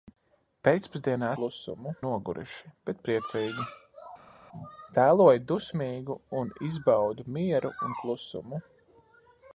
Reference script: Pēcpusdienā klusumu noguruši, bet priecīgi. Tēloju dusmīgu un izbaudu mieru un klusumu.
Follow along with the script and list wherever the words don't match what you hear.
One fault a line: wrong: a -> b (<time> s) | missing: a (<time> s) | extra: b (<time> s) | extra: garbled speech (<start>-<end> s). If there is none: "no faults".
no faults